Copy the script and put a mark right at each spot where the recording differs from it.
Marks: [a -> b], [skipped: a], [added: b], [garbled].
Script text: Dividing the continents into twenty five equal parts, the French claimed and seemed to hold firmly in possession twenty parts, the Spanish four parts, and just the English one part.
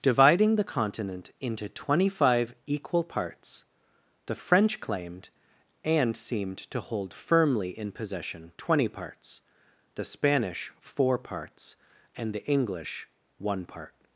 Dividing the [continents -> continent] into twenty five equal parts, the French claimed and seemed to hold firmly in possession twenty parts, the Spanish four parts, and [skipped: just] the English one part.